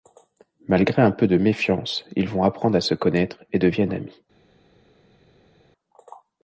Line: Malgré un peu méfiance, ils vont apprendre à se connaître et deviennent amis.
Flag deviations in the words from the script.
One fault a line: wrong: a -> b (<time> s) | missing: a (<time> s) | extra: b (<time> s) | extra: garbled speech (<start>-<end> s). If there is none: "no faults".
extra: de (1.3 s)